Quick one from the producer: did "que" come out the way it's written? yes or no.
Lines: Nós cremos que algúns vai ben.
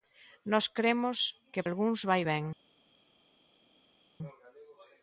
yes